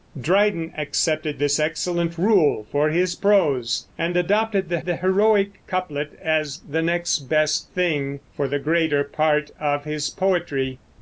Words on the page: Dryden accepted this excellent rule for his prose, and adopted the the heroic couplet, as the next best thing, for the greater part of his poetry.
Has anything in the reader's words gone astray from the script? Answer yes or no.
no